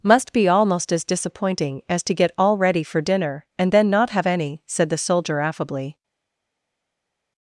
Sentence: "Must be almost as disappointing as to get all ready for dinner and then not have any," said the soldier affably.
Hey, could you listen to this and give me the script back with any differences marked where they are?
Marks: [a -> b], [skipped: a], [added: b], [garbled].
"Must be almost as disappointing as to get all ready for dinner and then not have any," said the soldier affably.